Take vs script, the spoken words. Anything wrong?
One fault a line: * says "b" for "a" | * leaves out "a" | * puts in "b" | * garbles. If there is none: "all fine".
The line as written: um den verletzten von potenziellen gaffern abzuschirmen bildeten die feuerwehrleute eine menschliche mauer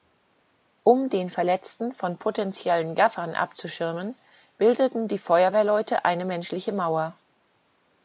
all fine